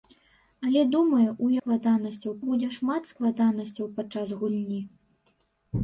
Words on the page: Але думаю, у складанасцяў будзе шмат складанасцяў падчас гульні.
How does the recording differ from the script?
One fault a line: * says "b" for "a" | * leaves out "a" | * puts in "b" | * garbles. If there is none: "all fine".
all fine